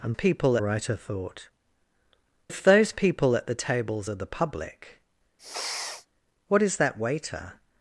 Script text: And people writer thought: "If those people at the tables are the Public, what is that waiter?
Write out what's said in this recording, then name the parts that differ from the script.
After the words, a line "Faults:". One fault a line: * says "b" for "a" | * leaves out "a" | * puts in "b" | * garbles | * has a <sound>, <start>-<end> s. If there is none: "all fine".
And people writer thought: "If those people at the tables are the Public, what is that waiter?
Faults:
* has a sniff, 5.4-6.1 s